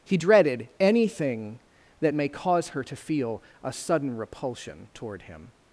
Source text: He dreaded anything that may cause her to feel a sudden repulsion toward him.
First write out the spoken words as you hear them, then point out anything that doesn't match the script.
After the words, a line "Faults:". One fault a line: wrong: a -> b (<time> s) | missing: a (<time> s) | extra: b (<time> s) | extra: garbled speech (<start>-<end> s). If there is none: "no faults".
He dreaded anything that may cause her to feel a sudden repulsion toward him.
Faults:
no faults